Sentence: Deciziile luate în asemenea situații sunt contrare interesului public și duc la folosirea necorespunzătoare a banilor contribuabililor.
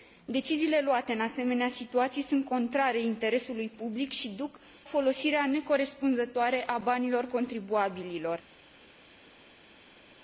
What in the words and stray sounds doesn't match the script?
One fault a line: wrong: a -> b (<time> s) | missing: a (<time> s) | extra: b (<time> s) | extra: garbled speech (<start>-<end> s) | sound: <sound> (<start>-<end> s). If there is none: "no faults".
missing: la (4.6 s)